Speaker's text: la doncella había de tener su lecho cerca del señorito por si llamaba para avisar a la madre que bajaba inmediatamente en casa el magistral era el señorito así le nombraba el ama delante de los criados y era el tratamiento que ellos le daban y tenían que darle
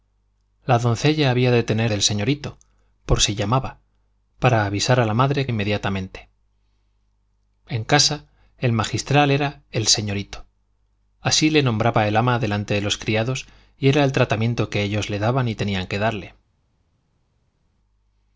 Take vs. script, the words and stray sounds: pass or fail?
fail